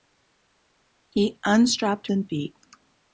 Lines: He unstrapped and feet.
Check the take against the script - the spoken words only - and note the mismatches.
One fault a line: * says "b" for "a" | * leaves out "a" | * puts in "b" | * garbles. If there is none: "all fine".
all fine